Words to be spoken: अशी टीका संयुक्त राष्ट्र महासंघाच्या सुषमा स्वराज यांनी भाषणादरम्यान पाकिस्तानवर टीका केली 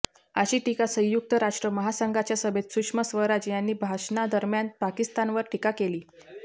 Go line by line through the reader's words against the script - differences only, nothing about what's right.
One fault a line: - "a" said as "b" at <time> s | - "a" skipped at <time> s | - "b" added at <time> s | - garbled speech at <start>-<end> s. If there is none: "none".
- "सभेत" added at 2.4 s